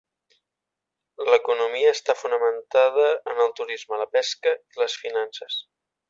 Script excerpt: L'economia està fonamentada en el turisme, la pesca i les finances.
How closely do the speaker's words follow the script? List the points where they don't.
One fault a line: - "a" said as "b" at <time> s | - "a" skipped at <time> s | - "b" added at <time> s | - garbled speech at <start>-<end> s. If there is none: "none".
none